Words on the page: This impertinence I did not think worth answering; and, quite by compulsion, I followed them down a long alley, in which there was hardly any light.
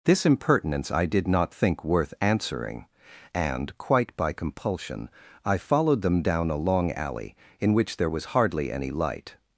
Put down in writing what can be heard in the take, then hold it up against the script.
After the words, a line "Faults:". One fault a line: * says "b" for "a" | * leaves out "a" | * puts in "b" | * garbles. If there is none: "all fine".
This impertinence I did not think worth answering; and, quite by compulsion, I followed them down a long alley, in which there was hardly any light.
Faults:
all fine